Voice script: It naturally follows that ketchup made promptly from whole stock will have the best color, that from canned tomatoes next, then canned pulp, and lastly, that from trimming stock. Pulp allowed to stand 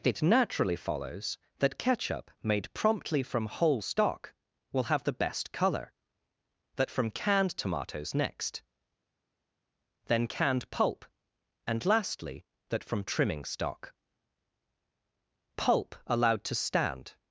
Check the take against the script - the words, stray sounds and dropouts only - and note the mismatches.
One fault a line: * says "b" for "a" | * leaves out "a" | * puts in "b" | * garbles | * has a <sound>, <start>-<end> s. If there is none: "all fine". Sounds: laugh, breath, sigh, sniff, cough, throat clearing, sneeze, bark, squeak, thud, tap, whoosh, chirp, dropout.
all fine